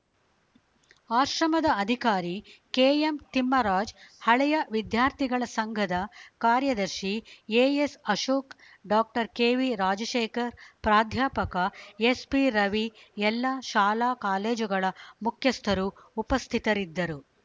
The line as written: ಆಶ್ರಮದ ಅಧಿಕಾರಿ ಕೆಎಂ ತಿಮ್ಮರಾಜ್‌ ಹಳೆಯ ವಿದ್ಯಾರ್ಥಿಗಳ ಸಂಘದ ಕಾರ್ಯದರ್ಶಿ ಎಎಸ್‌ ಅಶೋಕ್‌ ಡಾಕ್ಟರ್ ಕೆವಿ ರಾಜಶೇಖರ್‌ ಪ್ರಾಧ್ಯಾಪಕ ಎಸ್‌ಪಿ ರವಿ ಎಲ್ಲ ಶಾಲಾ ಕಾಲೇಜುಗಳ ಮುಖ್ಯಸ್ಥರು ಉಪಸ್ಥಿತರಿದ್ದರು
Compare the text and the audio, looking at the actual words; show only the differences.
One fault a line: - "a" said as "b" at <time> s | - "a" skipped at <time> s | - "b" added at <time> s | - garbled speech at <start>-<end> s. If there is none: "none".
none